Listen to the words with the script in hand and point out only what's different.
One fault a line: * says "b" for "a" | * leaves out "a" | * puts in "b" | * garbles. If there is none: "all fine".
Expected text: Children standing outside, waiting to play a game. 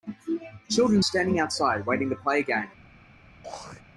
all fine